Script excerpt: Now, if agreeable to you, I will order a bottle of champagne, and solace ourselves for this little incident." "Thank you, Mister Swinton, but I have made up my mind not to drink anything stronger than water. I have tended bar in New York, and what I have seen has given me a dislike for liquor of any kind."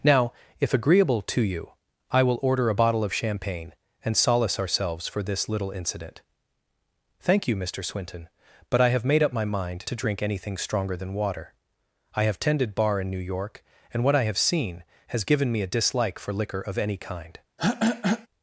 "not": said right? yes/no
no